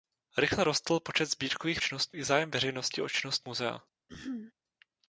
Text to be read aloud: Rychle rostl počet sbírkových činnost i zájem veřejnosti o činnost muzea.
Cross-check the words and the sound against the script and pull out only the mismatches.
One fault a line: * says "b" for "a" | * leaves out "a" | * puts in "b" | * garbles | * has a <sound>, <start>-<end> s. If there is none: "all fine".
* has a throat clearing, 4.1-4.5 s